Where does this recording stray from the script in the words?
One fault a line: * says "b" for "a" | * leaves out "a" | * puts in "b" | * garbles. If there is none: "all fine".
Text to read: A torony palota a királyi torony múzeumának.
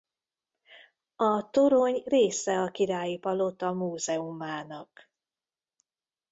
* says "része" for "palota"
* says "palota" for "torony"